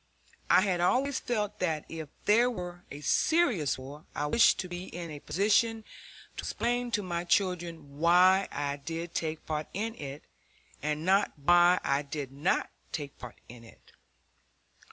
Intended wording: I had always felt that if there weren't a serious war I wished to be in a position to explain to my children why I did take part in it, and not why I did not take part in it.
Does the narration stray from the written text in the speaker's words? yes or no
yes